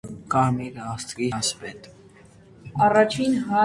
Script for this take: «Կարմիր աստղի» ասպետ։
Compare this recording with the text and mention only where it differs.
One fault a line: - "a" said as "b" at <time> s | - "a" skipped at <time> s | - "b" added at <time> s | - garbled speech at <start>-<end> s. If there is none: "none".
none